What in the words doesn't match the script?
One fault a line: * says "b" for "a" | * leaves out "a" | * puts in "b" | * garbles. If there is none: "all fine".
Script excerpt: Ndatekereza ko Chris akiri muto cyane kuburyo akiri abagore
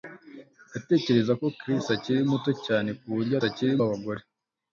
all fine